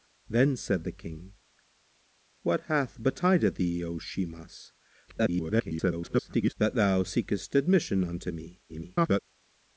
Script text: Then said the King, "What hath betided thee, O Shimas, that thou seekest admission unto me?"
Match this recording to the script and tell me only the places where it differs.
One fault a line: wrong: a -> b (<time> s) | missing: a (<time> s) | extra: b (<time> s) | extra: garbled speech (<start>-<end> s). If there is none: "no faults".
extra: garbled speech (5.1-6.5 s)
extra: garbled speech (8.7-9.2 s)